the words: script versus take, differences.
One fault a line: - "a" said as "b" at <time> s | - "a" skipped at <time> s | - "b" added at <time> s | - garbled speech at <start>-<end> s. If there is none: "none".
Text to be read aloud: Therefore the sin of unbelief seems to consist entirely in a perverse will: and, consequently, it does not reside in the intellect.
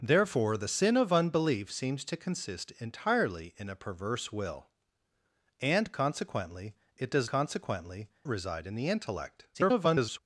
- "not" said as "consequently" at 7.3 s
- garbled speech at 9.5-10.2 s